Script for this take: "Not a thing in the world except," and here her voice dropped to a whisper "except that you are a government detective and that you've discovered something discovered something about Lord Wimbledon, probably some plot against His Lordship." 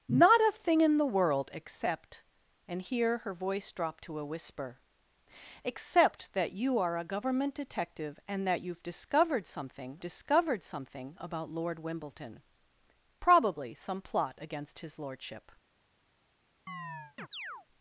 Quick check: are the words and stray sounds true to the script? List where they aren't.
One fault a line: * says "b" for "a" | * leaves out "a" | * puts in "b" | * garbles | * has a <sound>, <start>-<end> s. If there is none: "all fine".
* has a chirp, 16.7-17.7 s